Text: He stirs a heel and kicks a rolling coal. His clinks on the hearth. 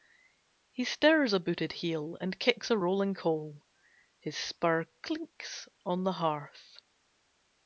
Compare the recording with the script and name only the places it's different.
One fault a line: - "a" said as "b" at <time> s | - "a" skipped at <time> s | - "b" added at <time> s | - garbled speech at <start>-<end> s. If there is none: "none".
- "booted" added at 1.4 s
- "spur" added at 4.4 s